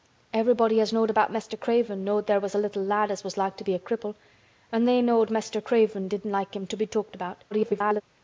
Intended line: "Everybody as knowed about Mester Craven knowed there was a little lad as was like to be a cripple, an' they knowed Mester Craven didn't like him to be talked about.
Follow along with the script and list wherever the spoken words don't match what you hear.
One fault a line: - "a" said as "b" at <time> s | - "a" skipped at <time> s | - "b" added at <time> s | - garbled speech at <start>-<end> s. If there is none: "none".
- garbled speech at 7.5-8.0 s